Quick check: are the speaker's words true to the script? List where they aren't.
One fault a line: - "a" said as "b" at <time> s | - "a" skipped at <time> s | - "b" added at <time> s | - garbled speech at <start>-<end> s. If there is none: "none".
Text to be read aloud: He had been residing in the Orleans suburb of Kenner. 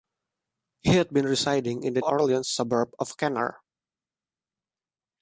none